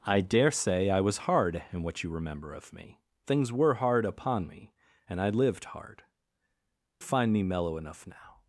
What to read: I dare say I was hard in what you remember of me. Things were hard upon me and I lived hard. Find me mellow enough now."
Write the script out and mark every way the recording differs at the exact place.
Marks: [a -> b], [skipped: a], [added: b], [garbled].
I dare say I was hard in what you remember of me. Things were hard upon me and I lived hard. Find me mellow enough now."